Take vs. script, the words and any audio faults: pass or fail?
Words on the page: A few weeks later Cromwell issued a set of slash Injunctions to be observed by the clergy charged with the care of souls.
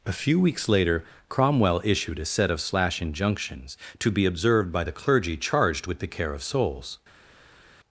pass